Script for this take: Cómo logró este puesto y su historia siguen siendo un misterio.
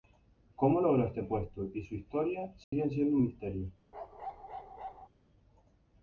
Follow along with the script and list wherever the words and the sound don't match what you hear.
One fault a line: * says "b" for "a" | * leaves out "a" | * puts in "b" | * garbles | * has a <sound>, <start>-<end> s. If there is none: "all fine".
* has a dropout, 2.6-2.7 s
* has a bark, 3.9-5.1 s